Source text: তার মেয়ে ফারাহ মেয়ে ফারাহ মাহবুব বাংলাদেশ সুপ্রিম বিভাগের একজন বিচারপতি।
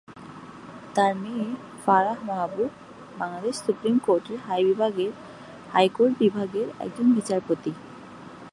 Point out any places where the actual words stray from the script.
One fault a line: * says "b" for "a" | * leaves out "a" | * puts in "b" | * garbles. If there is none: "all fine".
* leaves out "মেয়ে ফারাহ"
* puts in "কোর্টের হাইকোর্ট"